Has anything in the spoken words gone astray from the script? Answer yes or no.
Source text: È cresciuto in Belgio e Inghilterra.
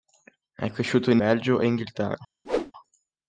no